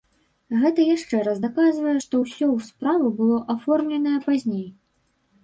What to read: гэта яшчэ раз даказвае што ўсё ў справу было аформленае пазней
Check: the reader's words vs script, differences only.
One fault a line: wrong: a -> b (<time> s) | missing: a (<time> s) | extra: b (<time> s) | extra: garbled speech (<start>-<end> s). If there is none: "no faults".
no faults